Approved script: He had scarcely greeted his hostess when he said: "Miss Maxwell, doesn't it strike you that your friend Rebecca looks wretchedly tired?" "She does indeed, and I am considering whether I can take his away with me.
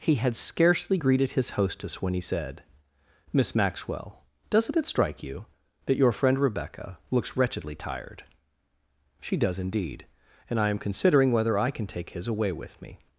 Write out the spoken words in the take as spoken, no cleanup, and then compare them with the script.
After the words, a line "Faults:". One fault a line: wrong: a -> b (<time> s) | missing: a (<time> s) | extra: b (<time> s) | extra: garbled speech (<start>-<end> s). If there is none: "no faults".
He had scarcely greeted his hostess when he said: "Miss Maxwell, doesn't it strike you that your friend Rebecca looks wretchedly tired?" "She does indeed, and I am considering whether I can take his away with me.
Faults:
no faults